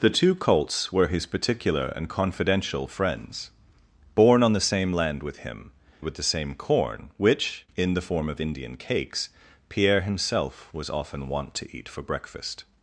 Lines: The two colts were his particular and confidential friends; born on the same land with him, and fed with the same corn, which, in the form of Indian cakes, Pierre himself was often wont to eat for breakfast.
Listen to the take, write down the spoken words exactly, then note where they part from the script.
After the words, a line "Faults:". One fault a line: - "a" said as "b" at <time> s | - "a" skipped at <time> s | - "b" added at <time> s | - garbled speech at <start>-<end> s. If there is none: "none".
The two colts were his particular and confidential friends; born on the same land with him, with the same corn, which, in the form of Indian cakes, Pierre himself was often wont to eat for breakfast.
Faults:
- "and fed" skipped at 5.7 s